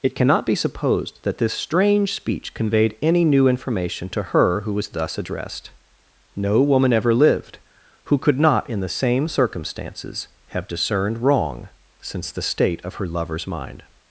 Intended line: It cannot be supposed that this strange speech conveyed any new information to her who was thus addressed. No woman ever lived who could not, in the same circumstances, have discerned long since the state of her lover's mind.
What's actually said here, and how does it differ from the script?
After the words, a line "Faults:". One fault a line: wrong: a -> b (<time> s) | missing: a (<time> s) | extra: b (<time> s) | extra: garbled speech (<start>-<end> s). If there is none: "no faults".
It cannot be supposed that this strange speech conveyed any new information to her who was thus addressed. No woman ever lived who could not, in the same circumstances, have discerned wrong since the state of her lover's mind.
Faults:
wrong: long -> wrong (11.2 s)